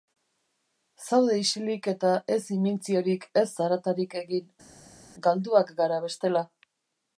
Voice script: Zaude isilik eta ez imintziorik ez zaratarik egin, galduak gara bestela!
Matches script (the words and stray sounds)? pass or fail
pass